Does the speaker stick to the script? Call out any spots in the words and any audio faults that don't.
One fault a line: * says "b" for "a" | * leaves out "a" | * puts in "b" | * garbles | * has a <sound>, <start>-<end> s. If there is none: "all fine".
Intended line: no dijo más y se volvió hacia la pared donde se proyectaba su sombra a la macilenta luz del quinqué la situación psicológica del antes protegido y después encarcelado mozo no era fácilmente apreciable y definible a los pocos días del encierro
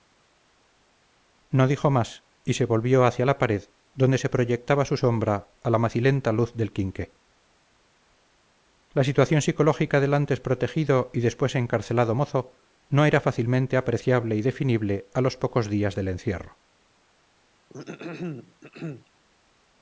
* has a throat clearing, 17.7-19.1 s